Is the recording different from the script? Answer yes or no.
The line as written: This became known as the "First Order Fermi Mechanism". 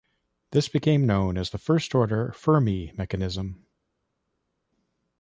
no